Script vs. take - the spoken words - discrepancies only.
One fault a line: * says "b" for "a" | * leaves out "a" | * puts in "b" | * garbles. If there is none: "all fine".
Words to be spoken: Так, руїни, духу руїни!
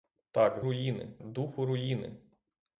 all fine